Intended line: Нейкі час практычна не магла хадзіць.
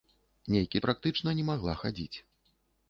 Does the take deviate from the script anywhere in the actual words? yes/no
yes